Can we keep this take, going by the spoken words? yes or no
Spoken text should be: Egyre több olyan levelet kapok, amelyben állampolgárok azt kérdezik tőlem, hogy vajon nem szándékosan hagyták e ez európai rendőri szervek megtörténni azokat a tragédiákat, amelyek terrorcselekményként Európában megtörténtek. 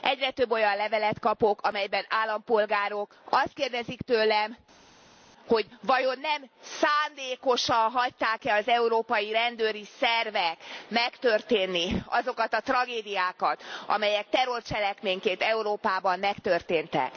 no